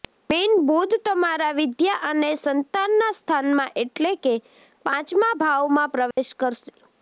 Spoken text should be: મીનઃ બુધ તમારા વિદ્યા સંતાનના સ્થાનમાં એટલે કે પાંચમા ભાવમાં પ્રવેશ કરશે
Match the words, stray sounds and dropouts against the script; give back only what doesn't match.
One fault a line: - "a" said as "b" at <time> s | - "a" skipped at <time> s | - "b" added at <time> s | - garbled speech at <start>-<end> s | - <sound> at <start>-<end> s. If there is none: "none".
- "અને" added at 2.0 s
- dropout at 6.1-6.2 s